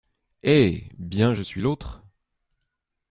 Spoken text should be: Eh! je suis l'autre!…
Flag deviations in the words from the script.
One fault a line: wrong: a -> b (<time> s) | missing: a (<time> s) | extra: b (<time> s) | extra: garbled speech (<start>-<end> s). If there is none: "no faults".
extra: bien (1.0 s)